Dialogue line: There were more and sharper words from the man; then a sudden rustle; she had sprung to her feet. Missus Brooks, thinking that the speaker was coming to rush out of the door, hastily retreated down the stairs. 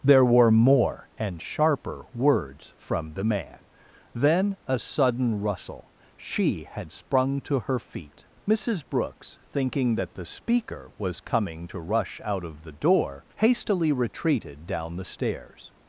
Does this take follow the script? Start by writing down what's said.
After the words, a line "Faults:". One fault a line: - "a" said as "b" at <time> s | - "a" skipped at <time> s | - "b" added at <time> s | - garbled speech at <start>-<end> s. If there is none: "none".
There were more and sharper words from the man; then a sudden rustle; she had sprung to her feet. Missus Brooks, thinking that the speaker was coming to rush out of the door, hastily retreated down the stairs.
Faults:
none